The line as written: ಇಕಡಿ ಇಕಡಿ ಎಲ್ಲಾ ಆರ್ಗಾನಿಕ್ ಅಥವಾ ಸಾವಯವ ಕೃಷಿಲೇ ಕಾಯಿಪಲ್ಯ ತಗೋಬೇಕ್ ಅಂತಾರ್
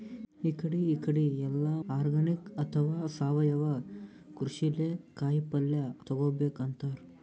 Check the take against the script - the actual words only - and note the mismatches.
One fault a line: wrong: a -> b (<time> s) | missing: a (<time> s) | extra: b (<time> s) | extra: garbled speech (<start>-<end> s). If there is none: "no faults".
no faults